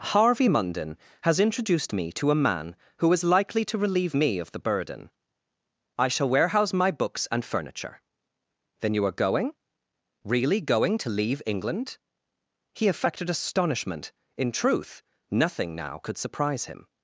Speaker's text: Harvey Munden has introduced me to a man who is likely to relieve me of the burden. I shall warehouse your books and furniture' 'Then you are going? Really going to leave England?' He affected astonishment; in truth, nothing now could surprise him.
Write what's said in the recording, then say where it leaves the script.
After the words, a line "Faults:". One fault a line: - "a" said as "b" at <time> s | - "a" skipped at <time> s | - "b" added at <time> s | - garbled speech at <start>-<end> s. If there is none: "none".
Harvey Munden has introduced me to a man who is likely to relieve me of the burden. I shall warehouse my books and furniture' 'Then you are going? Really going to leave England?' He affected astonishment; in truth, nothing now could surprise him.
Faults:
- "your" said as "my" at 6.7 s